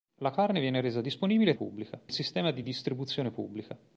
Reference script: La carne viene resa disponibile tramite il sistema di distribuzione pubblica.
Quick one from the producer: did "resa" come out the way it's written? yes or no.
yes